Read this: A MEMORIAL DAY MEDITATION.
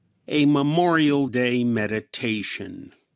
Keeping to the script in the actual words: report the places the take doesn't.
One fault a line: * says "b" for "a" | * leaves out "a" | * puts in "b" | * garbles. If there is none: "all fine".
all fine